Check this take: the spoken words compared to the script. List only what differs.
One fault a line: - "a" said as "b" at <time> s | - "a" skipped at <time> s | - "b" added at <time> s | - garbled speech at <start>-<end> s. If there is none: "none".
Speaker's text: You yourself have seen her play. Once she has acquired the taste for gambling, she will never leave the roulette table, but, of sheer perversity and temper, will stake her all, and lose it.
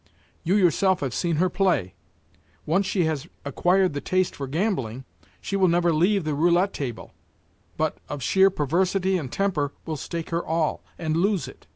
none